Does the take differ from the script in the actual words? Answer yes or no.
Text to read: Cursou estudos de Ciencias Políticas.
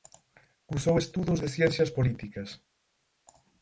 no